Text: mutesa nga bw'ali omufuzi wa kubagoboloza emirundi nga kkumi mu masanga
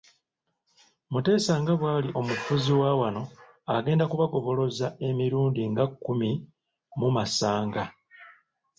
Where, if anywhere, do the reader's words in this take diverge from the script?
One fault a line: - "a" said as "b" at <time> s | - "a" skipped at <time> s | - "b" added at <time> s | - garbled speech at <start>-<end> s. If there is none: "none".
- "wano agenda" added at 3.0 s